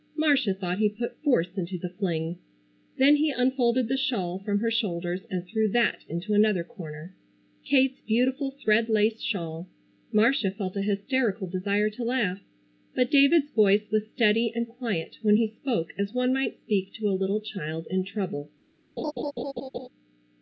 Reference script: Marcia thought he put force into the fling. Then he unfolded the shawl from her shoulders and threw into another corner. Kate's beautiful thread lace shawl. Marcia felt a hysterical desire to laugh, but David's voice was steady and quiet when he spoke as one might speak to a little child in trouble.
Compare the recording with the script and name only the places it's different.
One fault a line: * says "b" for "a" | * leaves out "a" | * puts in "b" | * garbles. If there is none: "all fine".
* puts in "that"